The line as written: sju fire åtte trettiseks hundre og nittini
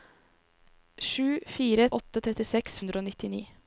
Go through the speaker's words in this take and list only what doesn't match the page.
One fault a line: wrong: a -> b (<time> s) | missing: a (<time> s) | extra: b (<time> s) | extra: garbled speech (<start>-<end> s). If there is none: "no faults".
no faults